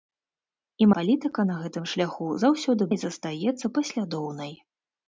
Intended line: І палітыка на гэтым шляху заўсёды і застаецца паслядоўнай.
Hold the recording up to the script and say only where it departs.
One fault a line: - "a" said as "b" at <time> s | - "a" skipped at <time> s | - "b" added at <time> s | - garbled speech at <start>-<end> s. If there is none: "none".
none